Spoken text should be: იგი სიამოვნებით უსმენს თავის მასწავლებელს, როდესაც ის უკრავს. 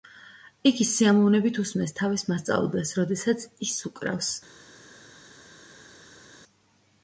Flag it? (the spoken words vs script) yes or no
no